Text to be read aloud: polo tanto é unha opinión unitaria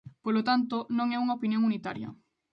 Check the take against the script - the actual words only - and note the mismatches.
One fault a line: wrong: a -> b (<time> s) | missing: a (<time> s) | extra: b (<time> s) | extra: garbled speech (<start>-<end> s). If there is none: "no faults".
extra: non (1.0 s)